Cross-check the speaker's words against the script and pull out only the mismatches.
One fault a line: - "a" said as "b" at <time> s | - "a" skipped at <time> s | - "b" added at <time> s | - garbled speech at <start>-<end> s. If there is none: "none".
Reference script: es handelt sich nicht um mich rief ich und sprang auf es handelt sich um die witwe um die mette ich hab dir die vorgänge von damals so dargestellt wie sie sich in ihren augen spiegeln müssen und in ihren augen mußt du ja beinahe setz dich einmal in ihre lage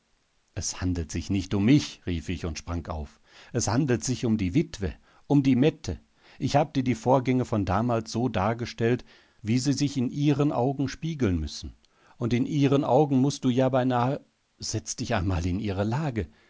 none